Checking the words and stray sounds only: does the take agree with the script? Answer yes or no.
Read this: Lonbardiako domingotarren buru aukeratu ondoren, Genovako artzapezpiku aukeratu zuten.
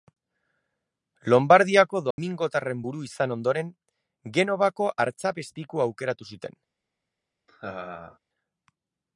no